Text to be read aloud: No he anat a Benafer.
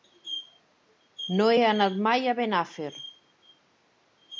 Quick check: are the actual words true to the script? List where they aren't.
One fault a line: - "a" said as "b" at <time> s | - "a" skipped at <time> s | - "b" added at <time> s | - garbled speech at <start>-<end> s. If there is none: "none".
- "mai" added at 2.1 s